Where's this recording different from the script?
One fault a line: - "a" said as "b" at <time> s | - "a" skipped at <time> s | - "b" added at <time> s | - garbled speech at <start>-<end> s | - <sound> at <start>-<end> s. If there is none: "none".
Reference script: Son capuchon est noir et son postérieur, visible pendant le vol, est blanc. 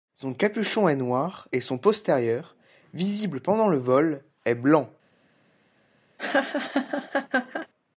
- laugh at 6.2-7.7 s